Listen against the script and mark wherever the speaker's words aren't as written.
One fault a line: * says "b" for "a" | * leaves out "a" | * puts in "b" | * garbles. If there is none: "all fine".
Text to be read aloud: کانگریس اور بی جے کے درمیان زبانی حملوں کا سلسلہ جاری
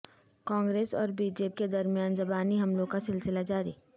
all fine